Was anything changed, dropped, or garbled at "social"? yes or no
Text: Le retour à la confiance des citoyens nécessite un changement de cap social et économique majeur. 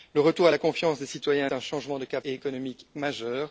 yes